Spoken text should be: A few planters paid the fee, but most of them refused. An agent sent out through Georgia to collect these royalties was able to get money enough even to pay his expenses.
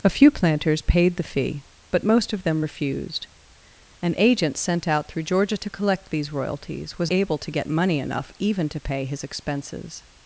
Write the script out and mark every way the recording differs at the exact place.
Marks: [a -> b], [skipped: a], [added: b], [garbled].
A few planters paid the fee, but most of them refused. An agent sent out through Georgia to collect these royalties was able to get money enough even to pay his expenses.